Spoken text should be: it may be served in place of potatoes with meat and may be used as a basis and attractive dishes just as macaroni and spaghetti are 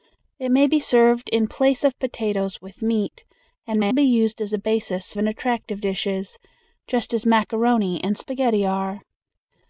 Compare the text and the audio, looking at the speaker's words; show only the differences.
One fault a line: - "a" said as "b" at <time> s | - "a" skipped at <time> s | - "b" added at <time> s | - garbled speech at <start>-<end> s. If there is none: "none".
none